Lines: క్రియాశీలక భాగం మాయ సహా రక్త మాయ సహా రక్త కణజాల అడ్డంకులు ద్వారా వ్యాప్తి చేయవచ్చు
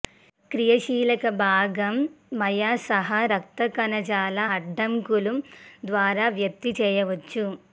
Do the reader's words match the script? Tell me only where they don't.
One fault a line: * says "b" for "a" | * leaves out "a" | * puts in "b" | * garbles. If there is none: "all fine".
* leaves out "మాయ సహా రక్త"